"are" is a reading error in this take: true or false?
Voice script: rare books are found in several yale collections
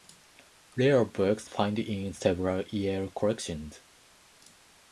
true